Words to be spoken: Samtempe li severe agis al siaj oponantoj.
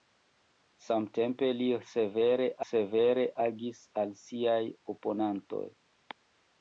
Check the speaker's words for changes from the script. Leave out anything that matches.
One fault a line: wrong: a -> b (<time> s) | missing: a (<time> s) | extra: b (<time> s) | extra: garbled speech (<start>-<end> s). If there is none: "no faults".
extra: severe (2.7 s)